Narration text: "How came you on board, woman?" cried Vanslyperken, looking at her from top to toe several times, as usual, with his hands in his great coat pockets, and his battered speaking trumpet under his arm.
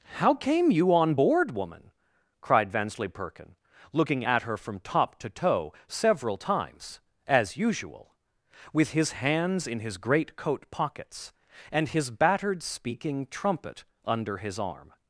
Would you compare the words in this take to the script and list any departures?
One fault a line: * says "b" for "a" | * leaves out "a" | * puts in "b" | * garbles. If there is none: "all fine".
all fine